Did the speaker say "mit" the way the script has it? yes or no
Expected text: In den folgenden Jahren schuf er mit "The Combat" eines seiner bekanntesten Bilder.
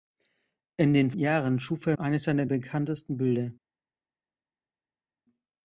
no